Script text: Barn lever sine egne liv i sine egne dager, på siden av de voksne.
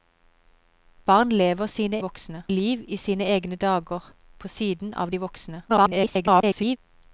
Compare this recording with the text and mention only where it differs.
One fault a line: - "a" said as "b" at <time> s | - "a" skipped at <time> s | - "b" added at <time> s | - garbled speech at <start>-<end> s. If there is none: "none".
- "egne" said as "voksne" at 2.0 s
- garbled speech at 5.7-6.8 s